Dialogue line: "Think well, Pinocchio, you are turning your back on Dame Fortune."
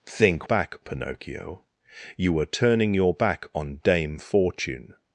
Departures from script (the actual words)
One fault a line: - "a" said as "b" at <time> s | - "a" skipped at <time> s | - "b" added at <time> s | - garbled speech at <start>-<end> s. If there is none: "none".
- "well" said as "back" at 0.4 s